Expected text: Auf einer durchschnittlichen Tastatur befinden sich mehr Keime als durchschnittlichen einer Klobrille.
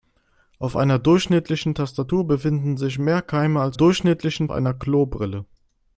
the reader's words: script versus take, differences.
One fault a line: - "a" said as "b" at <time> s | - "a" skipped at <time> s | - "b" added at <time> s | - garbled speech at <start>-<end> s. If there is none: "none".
none